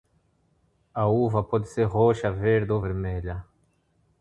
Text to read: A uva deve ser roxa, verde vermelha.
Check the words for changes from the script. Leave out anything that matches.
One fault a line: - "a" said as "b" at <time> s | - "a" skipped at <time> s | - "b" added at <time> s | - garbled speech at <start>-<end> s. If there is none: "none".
- "deve" said as "pode" at 1.4 s
- "ou" added at 2.7 s